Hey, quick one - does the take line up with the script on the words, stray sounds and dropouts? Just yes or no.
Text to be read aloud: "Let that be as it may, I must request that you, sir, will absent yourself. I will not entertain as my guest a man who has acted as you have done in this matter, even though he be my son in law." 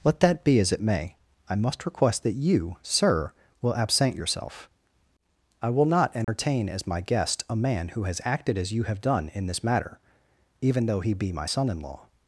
no